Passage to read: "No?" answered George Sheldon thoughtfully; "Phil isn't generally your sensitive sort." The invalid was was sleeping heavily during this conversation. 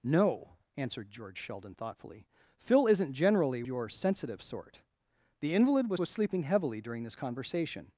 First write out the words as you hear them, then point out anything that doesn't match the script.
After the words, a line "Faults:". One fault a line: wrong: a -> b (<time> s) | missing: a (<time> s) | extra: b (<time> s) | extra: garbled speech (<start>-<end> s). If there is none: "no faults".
"No?" answered George Sheldon thoughtfully; "Phil isn't generally your sensitive sort." The invalid was was sleeping heavily during this conversation.
Faults:
no faults